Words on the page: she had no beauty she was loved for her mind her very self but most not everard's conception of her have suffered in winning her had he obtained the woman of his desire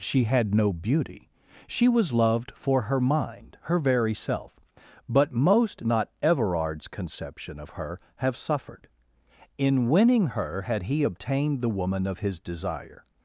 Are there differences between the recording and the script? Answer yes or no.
no